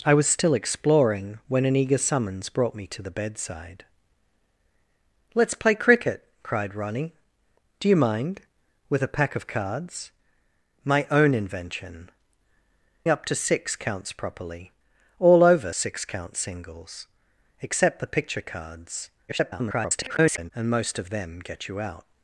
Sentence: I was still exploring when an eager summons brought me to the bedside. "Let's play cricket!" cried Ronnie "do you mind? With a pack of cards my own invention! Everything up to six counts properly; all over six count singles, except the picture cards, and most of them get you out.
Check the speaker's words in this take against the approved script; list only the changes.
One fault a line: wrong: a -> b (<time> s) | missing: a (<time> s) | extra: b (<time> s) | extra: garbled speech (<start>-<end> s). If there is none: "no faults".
missing: Everything (12.1 s)
extra: garbled speech (19.3-20.5 s)